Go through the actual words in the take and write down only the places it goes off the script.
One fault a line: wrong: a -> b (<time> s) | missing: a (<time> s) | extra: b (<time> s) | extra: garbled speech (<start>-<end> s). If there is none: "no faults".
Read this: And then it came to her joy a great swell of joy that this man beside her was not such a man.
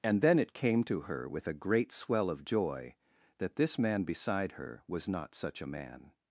wrong: joy -> with (1.3 s)